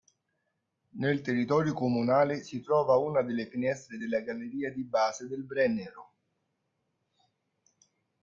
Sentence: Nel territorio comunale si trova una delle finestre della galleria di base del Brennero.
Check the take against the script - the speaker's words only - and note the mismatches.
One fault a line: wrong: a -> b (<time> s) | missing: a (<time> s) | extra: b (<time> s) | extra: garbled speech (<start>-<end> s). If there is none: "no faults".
no faults